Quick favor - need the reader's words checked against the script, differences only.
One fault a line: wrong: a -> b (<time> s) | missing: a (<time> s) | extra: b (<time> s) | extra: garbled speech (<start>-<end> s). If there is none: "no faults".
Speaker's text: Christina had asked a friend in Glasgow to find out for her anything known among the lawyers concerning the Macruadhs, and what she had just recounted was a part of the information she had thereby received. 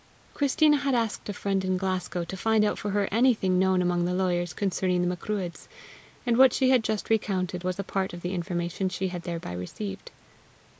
no faults